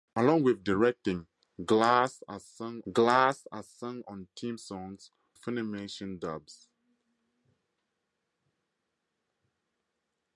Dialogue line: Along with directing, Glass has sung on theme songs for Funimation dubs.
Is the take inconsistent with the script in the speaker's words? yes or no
yes